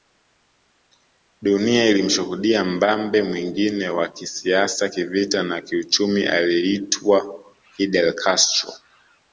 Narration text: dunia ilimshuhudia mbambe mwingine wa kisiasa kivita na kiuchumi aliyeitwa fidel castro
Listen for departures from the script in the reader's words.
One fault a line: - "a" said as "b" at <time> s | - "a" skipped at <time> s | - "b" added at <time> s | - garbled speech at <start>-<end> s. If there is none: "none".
none